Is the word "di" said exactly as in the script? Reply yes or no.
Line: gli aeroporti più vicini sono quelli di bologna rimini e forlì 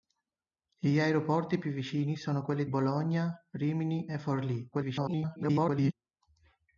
no